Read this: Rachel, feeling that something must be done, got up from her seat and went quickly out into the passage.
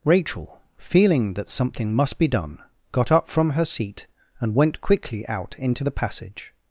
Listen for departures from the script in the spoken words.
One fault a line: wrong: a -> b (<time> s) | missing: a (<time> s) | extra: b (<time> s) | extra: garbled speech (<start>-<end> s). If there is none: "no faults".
no faults